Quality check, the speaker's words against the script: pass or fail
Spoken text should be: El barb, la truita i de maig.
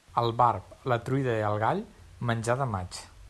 fail